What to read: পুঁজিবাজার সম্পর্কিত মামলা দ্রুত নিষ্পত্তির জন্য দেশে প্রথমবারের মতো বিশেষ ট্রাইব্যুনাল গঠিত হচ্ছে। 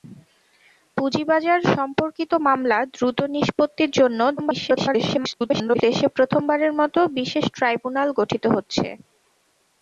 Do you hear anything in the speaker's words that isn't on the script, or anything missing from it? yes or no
yes